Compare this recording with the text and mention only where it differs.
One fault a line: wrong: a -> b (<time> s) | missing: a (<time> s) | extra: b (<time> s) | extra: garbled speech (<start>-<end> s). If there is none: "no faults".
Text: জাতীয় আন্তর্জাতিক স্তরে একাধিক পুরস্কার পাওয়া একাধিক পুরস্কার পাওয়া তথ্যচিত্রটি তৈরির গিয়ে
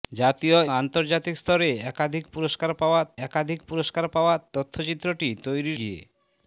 no faults